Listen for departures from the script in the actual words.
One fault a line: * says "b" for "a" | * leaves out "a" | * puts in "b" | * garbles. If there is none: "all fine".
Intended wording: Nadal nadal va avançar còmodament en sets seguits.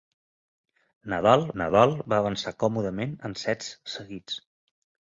all fine